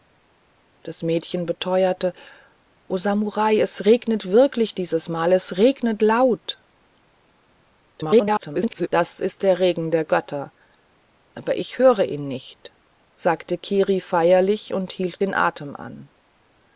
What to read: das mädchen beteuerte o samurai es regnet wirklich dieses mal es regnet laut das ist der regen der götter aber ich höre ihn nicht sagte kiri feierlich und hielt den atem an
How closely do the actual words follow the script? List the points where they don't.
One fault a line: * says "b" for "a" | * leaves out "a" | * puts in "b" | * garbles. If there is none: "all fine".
* garbles